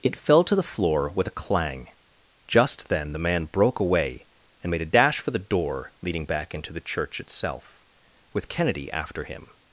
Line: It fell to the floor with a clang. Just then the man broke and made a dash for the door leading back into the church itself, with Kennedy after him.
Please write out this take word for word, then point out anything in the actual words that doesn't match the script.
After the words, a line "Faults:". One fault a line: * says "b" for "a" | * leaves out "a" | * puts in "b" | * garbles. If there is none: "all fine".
It fell to the floor with a clang. Just then the man broke away and made a dash for the door leading back into the church itself, with Kennedy after him.
Faults:
* puts in "away"